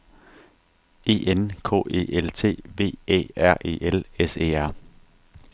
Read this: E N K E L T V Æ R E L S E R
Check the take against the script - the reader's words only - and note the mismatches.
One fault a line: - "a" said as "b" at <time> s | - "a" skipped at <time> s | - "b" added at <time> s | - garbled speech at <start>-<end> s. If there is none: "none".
none